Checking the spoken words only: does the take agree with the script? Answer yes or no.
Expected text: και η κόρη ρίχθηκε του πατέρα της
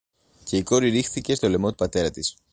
no